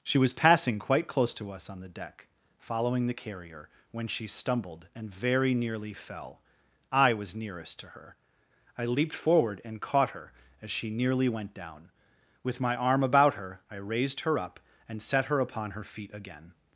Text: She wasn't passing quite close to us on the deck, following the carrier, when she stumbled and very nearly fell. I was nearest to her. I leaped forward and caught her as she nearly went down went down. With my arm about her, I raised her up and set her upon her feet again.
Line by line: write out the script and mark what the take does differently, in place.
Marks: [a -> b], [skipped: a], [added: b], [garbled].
She [wasn't -> was] passing quite close to us on the deck, following the carrier, when she stumbled and very nearly fell. I was nearest to her. I leaped forward and caught her as she nearly went down [skipped: went down.] With my arm about her, I raised her up and set her upon her feet again.